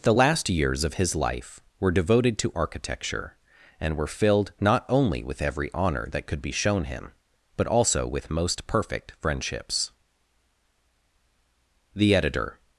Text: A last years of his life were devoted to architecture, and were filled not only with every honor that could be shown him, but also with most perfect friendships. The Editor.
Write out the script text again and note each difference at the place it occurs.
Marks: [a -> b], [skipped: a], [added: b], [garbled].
[A -> The] last years of his life were devoted to architecture, and were filled not only with every honor that could be shown him, but also with most perfect friendships. The Editor.